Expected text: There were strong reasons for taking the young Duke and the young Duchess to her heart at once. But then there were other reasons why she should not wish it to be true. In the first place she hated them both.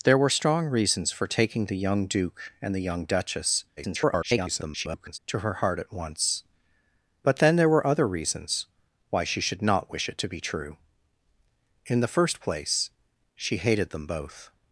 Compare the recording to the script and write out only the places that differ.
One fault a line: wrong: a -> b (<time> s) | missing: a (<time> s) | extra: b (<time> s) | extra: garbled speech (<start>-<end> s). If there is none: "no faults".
extra: garbled speech (3.8-5.2 s)